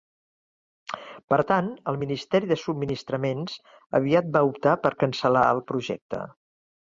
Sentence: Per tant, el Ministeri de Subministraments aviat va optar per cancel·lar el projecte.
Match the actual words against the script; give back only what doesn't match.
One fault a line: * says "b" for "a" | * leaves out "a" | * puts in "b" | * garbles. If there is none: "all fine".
all fine